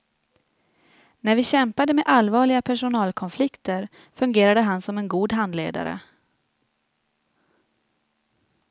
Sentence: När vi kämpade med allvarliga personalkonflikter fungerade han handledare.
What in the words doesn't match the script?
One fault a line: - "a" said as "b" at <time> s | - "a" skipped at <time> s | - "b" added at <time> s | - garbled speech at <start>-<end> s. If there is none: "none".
- "som en god" added at 4.8 s